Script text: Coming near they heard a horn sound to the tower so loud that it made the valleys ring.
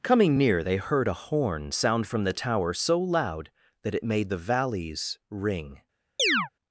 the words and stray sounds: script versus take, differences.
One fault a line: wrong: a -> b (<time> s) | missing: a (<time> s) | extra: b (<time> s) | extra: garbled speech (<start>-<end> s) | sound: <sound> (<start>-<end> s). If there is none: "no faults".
wrong: to -> from (2.1 s)
sound: chirp (6.2-6.5 s)